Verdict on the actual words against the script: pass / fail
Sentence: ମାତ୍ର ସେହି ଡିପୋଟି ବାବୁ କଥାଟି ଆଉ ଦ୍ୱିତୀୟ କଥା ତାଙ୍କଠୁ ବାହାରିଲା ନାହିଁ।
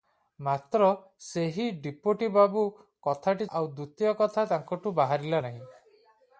pass